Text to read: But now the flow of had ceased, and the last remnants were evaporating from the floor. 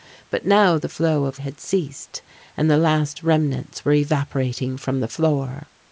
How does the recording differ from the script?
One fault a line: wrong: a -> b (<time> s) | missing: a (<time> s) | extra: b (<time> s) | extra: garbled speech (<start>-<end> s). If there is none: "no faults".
no faults